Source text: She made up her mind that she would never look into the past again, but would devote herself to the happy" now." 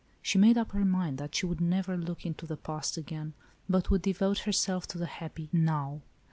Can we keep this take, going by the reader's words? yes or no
yes